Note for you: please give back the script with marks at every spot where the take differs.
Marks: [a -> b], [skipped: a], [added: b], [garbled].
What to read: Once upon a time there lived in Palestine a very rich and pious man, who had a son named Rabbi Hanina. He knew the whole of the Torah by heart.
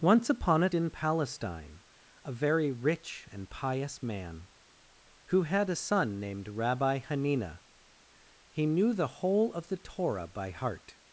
Once upon a [skipped: time there lived] in Palestine a very rich and pious man, who had a son named Rabbi Hanina. He knew the whole of the Torah by heart.